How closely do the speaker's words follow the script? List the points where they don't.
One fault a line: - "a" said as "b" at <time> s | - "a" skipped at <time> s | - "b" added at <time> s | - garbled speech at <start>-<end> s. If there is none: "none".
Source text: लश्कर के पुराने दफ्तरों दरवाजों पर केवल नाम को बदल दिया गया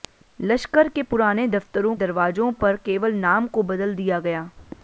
none